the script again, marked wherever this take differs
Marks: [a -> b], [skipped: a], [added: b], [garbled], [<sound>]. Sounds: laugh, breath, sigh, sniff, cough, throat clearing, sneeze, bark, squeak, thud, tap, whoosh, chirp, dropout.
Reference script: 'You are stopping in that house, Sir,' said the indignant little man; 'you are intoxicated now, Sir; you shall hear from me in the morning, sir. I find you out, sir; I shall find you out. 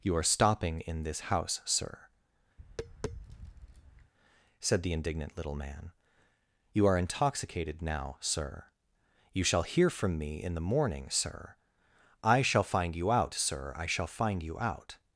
'You are stopping in [that -> this] house, Sir,' [tap] said the indignant little man; 'you are intoxicated now, Sir; you shall hear from me in the morning, sir. I [added: shall] find you out, sir; I shall find you out.